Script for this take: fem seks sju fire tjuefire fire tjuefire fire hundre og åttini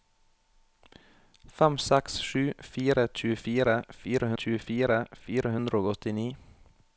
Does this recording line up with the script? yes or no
yes